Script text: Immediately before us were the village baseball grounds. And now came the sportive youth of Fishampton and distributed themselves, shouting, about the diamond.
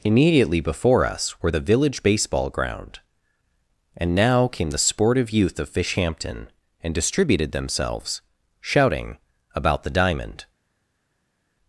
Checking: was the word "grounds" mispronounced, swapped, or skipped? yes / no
yes